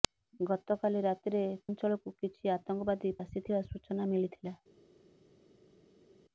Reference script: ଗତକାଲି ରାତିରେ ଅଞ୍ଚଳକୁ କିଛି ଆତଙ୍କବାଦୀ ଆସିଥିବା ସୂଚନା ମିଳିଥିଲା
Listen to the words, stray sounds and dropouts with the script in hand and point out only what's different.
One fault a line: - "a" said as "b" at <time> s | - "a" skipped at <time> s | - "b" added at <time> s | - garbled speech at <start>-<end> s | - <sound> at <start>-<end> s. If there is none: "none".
none